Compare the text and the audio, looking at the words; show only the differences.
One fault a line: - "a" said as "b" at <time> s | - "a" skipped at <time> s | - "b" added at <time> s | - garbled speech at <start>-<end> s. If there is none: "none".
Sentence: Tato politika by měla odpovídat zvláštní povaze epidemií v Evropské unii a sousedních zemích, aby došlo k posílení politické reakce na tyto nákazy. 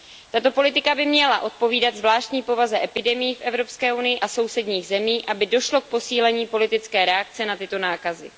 none